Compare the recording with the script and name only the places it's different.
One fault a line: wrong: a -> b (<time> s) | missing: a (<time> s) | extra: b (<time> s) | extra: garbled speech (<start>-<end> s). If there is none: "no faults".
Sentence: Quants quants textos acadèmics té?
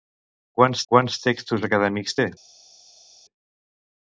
no faults